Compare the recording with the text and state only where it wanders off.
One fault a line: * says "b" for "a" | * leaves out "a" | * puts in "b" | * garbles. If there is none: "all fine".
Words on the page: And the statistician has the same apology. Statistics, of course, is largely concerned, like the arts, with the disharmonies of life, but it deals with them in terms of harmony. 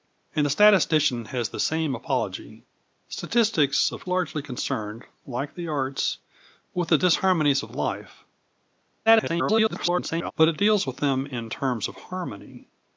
* leaves out "course is"
* garbles